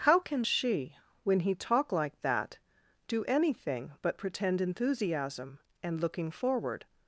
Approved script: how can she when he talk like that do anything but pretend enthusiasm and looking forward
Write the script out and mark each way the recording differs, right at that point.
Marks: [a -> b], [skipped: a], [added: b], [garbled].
how can she when he talk like that do anything but pretend enthusiasm and looking forward